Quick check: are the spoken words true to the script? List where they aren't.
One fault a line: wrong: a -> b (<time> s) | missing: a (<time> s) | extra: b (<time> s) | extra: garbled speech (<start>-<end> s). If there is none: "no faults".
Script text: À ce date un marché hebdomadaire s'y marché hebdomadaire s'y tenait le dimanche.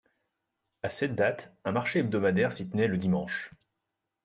wrong: ce -> cette (0.9 s)
missing: marché hebdomadaire s'y (2.7 s)